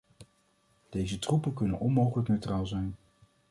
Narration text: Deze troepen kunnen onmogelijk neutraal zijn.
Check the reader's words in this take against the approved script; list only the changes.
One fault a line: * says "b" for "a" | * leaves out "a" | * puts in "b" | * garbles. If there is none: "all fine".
all fine